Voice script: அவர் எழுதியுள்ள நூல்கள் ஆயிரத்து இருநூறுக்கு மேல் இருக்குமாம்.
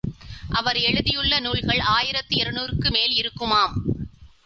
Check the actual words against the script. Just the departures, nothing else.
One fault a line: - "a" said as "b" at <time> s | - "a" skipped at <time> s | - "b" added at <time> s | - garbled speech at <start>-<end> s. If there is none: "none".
none